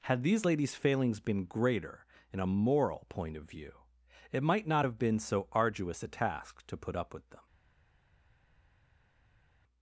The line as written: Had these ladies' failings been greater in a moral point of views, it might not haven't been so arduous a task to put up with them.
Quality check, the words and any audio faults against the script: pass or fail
fail